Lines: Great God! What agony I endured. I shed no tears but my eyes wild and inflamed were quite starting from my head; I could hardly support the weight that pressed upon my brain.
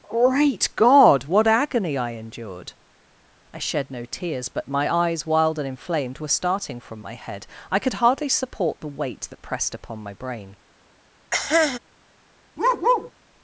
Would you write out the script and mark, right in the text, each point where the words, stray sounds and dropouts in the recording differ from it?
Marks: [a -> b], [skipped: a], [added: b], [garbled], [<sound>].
Great God! What agony I endured. I shed no tears but my eyes wild and inflamed were [skipped: quite] starting from my head; I could hardly support the weight that pressed upon my brain. [cough] [bark]